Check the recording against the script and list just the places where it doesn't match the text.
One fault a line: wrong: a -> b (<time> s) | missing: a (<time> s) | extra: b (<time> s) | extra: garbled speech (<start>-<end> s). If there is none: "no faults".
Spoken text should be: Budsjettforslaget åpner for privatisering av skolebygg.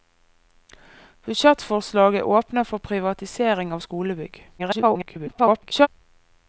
extra: garbled speech (4.6-5.9 s)